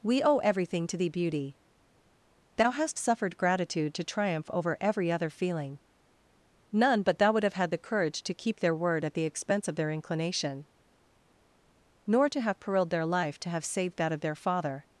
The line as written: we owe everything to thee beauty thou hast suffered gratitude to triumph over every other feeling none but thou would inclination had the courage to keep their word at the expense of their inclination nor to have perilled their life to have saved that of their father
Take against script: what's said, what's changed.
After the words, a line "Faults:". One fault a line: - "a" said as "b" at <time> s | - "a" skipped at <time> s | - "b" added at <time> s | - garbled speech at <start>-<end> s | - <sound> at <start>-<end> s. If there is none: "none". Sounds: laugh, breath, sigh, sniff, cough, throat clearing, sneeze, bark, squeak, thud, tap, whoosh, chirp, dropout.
we owe everything to thee beauty thou hast suffered gratitude to triumph over every other feeling none but thou would have had the courage to keep their word at the expense of their inclination nor to have perilled their life to have saved that of their father
Faults:
- "inclination" said as "have" at 7.4 s